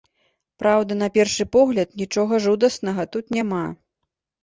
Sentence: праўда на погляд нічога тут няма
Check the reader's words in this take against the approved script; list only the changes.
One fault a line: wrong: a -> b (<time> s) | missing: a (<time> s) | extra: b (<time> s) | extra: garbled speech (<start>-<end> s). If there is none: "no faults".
extra: першы (1.2 s)
extra: жудаснага (2.5 s)